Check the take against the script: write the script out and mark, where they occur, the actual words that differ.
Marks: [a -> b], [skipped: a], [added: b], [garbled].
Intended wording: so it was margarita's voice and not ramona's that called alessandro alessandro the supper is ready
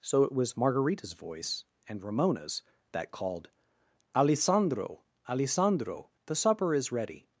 so it was margarita's voice and [skipped: not] ramona's that called alessandro alessandro the supper is ready